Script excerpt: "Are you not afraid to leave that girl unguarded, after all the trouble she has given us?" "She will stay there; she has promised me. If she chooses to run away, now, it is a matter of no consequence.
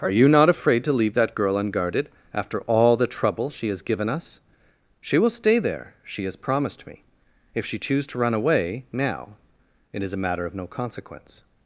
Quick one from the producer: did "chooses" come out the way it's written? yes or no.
no